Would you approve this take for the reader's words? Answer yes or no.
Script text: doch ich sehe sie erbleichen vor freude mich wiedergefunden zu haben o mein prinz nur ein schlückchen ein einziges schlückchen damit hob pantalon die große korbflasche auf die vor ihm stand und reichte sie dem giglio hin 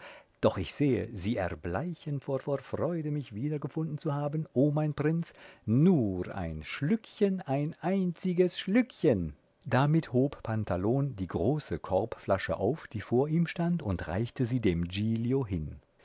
no